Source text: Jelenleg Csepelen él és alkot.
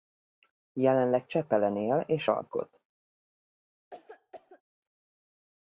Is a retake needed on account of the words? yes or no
no